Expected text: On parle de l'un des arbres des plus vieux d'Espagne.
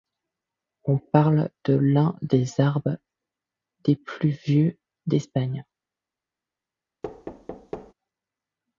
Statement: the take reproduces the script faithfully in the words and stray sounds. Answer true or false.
false